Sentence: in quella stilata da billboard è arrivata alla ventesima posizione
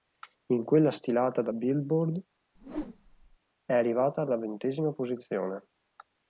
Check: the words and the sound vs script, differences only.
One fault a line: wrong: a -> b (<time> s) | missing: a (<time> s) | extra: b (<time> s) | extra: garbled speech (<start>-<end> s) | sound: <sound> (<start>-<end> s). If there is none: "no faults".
sound: whoosh (2.5-3.4 s)